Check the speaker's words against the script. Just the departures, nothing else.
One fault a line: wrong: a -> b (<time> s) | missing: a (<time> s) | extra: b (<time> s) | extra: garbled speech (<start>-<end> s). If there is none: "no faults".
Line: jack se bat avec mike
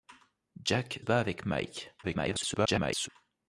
missing: se (1.0 s)
extra: garbled speech (2.0-3.1 s)